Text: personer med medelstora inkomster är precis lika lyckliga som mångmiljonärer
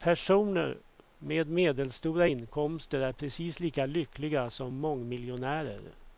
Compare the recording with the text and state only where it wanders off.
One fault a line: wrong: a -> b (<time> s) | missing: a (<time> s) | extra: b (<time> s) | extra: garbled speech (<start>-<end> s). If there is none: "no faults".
no faults